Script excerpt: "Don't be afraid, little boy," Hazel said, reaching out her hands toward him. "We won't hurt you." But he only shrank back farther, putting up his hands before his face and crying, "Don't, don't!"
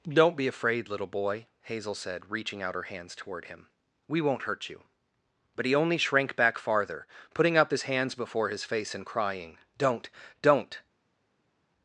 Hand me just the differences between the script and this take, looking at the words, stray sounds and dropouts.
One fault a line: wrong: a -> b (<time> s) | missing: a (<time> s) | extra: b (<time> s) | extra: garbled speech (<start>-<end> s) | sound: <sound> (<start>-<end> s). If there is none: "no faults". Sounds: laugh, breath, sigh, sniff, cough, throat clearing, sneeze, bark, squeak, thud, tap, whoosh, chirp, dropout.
no faults